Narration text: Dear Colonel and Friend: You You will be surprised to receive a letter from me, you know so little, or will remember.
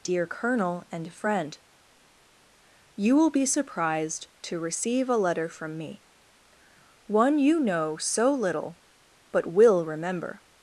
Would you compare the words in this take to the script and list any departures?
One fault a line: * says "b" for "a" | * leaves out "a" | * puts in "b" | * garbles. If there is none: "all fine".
* leaves out "You"
* puts in "one"
* says "but" for "or"